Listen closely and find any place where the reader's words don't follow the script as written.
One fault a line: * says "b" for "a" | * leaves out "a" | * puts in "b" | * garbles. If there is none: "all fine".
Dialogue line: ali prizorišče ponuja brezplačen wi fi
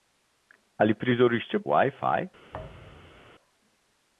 * leaves out "ponuja brezplačen"